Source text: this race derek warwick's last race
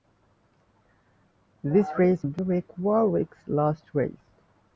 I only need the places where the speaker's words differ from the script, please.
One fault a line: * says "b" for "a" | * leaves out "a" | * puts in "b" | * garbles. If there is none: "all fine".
all fine